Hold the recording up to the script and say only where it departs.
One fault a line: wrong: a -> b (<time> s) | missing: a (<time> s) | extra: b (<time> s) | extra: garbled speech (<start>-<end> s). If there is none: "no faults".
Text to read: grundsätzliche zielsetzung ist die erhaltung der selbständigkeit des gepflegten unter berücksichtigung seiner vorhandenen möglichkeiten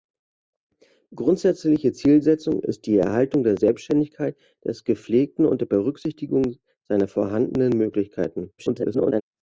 extra: garbled speech (8.6-9.2 s)